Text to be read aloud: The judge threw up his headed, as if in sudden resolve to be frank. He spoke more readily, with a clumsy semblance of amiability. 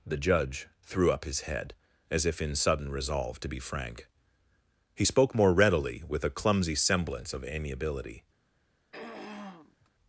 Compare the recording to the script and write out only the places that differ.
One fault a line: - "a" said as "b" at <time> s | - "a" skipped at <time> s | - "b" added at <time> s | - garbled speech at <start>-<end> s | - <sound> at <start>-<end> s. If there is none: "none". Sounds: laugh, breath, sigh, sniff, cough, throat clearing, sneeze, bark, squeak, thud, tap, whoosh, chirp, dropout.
- "headed" said as "head" at 1.4 s
- throat clearing at 8.9-9.9 s